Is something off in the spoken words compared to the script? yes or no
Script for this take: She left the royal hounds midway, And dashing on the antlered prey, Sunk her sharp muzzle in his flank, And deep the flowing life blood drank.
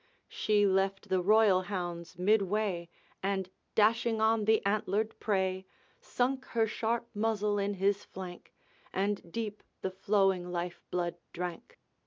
no